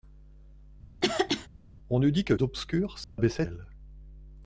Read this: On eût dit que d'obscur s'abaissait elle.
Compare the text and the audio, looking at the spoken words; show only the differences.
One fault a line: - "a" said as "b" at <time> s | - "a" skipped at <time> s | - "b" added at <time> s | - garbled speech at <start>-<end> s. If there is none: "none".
none